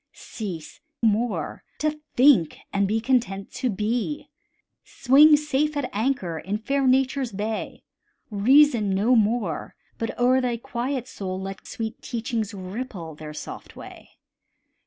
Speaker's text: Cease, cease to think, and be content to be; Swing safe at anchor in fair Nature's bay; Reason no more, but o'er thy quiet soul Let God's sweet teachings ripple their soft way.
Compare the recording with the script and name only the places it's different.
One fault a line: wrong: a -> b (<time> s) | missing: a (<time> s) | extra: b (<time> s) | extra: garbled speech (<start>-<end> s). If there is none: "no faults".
wrong: cease -> more (1.0 s)
missing: God's (11.7 s)